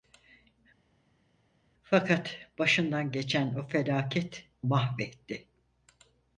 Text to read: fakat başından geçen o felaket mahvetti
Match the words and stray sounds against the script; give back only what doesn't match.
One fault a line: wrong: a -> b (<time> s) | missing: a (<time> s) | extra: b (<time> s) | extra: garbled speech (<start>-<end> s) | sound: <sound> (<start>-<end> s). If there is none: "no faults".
no faults